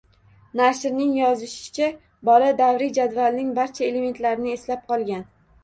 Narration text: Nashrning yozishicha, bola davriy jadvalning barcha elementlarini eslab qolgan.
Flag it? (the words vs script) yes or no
no